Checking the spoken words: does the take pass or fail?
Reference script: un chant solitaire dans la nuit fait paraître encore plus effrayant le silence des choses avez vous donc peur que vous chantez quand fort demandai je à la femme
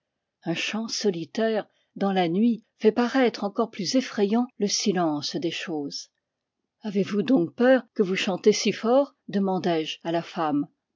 fail